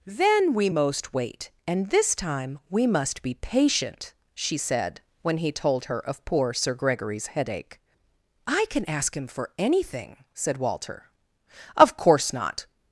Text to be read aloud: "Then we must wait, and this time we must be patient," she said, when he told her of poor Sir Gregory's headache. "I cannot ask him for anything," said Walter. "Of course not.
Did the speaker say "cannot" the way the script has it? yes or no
no